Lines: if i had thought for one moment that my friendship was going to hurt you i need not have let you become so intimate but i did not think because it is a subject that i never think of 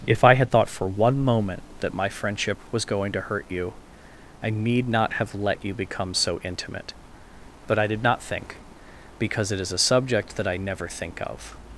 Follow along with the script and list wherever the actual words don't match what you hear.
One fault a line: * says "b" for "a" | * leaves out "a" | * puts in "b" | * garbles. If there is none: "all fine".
all fine